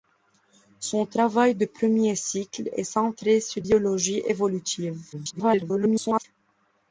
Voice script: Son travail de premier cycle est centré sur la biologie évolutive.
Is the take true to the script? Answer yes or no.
no